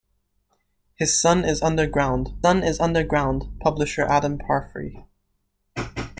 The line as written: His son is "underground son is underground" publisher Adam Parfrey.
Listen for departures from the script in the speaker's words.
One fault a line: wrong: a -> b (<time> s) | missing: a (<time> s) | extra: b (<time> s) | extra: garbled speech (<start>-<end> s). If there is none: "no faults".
no faults